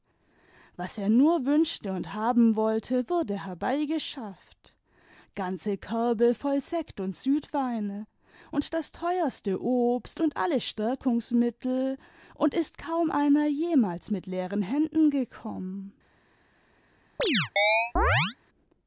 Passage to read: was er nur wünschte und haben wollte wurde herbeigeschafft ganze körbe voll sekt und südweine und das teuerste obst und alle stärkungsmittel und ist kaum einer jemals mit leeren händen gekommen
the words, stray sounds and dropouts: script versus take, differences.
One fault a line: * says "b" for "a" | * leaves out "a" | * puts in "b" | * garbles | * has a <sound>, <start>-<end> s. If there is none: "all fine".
* has a chirp, 17.2-18.4 s